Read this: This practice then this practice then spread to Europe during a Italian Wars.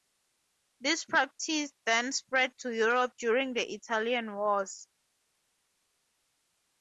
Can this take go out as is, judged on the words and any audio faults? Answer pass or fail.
fail